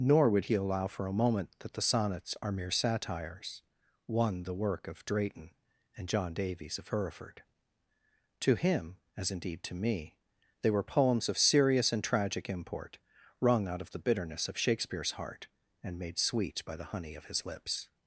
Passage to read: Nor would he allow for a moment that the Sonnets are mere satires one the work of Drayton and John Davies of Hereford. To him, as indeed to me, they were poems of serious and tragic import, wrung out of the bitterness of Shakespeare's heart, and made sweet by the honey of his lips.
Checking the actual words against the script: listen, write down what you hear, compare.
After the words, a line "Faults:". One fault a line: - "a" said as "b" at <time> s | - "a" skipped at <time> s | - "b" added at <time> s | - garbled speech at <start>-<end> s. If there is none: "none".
Nor would he allow for a moment that the Sonnets are mere satires one the work of Drayton and John Davies of Hereford. To him, as indeed to me, they were poems of serious and tragic import, wrung out of the bitterness of Shakespeare's heart, and made sweet by the honey of his lips.
Faults:
none